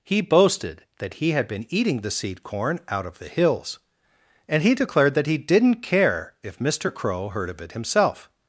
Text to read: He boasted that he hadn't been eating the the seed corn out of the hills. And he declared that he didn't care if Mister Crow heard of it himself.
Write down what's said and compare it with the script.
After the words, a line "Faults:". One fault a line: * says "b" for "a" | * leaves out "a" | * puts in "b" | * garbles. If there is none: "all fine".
He boasted that he had been eating the seed corn out of the hills. And he declared that he didn't care if Mister Crow heard of it himself.
Faults:
* says "had" for "hadn't"
* leaves out "the"